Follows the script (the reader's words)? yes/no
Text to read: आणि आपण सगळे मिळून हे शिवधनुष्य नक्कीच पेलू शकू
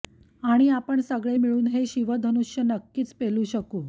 yes